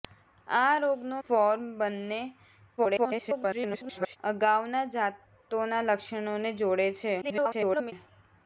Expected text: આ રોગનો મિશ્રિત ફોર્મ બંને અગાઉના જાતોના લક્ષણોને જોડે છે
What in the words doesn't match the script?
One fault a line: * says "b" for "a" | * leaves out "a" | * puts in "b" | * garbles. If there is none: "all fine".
* leaves out "મિશ્રિત"
* garbles
* garbles